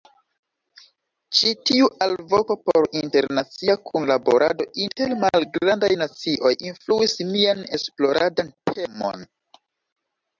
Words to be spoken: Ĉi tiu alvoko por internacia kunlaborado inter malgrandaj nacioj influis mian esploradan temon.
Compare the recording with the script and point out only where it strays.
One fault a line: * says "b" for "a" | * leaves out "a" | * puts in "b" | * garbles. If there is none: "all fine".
all fine